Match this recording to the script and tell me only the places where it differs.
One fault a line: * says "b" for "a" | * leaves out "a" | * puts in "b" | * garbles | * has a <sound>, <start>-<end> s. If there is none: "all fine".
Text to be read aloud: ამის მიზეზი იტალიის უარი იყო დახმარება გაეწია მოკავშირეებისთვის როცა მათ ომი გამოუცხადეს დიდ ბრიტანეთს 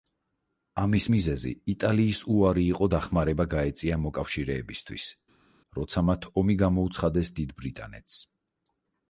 all fine